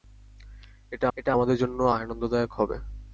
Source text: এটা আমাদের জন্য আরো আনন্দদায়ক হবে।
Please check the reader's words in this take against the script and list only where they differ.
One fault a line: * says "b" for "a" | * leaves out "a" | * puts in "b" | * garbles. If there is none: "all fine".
* puts in "এটা"
* leaves out "আরো"